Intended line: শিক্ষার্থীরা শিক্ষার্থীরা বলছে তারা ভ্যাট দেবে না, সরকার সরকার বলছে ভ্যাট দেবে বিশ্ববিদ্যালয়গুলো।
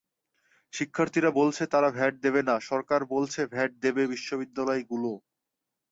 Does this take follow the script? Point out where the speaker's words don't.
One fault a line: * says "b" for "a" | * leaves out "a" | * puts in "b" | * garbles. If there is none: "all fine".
* leaves out "শিক্ষার্থীরা"
* leaves out "সরকার"